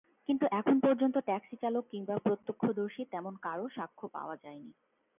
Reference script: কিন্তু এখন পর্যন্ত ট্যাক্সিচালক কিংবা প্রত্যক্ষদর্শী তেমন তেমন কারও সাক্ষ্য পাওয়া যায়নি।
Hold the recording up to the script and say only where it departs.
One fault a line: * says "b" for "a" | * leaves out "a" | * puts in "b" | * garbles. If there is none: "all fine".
* leaves out "তেমন"